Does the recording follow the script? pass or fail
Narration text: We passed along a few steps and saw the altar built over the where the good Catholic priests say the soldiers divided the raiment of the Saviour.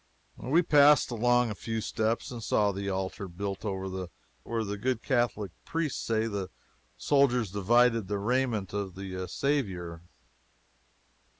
pass